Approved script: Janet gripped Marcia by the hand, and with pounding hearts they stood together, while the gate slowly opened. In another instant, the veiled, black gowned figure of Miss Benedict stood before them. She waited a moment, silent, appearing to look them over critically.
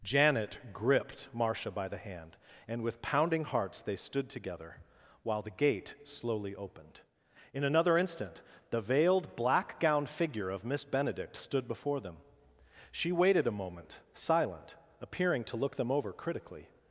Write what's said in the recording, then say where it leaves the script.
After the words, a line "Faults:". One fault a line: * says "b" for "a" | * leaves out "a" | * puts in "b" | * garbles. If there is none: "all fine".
Janet gripped Marcia by the hand, and with pounding hearts they stood together, while the gate slowly opened. In another instant, the veiled, black gowned figure of Miss Benedict stood before them. She waited a moment, silent, appearing to look them over critically.
Faults:
all fine